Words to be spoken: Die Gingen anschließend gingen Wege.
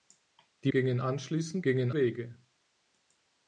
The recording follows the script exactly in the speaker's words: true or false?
true